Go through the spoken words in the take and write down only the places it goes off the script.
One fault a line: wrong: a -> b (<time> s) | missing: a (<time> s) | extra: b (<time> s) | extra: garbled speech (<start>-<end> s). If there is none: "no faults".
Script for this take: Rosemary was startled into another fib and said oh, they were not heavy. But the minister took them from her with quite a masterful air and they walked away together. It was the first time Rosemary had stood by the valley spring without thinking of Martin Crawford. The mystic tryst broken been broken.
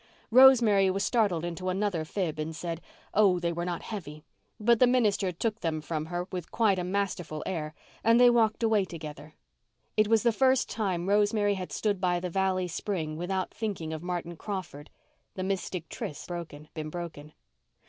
no faults